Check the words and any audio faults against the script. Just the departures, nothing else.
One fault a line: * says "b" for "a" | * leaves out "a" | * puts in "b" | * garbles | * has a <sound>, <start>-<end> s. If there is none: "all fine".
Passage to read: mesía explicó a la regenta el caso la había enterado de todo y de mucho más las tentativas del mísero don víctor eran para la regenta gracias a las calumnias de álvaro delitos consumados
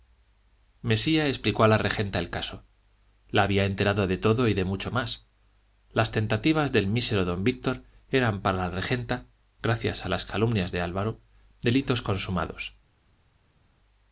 all fine